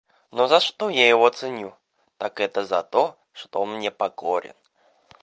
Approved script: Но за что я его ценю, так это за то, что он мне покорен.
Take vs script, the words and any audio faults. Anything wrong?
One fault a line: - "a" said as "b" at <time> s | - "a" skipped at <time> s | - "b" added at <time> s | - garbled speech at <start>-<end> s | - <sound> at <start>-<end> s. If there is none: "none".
none